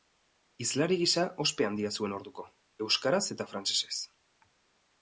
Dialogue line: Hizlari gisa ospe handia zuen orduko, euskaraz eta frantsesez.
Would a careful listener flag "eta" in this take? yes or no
no